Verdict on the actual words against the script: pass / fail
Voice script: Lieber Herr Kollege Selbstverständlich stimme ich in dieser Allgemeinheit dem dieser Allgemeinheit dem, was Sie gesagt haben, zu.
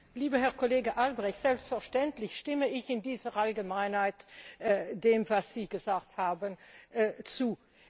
fail